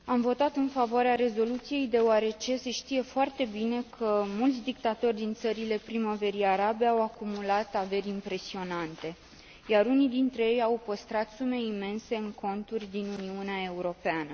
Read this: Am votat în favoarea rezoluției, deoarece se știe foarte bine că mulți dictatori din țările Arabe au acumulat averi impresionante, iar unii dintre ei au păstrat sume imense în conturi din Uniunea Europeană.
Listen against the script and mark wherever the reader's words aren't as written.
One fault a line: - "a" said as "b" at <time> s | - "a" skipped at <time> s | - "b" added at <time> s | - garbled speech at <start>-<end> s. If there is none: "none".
- "Primăverii" added at 5.8 s